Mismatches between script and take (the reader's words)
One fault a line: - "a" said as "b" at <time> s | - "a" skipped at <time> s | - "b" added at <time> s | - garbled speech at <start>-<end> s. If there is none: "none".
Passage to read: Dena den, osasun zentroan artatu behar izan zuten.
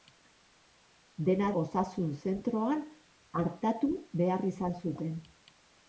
- "den" skipped at 1.5 s